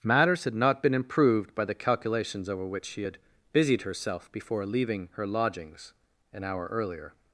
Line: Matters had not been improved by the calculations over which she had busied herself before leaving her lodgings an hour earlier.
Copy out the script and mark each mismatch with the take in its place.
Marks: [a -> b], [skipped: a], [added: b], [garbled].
Matters had not been improved by the calculations over which she had busied herself before leaving her lodgings an hour earlier.